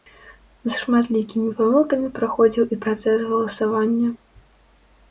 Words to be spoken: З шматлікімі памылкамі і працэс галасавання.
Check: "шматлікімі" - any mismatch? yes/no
no